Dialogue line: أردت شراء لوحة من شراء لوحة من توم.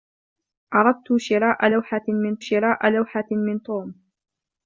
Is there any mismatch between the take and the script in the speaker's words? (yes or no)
no